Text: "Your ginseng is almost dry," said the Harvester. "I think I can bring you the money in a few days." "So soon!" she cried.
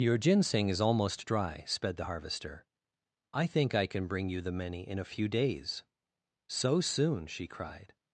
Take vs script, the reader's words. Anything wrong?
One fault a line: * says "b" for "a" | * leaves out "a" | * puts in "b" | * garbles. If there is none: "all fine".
* says "sped" for "said"
* says "many" for "money"